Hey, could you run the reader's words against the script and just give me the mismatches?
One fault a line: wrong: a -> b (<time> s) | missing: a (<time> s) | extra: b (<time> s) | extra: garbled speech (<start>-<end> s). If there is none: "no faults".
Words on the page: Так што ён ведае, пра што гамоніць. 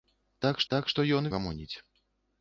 extra: так (0.7 s)
missing: ведае пра што (1.3 s)